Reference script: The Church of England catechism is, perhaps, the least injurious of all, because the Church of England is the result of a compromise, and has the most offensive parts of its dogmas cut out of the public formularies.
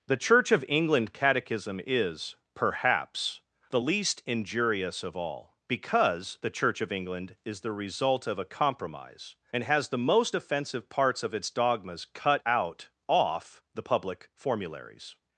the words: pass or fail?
fail